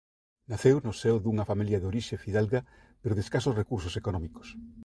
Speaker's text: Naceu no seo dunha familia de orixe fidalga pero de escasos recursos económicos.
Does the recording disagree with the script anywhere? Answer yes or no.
no